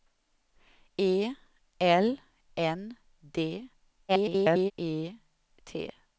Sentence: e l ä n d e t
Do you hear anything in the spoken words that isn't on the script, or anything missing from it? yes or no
yes